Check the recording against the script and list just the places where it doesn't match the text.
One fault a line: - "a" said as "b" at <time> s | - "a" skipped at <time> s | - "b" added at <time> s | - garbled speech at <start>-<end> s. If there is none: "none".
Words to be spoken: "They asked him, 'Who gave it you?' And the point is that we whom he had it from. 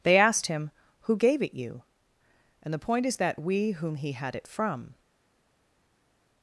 none